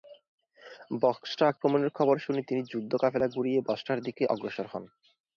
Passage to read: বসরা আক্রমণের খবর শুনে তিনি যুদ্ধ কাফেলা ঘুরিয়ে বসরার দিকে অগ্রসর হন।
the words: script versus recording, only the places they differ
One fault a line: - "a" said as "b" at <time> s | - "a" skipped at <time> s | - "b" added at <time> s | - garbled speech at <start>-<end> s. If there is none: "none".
none